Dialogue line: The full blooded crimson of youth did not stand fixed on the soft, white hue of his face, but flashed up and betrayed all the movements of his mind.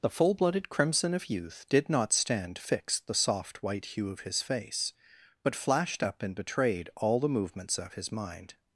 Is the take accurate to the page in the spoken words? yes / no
no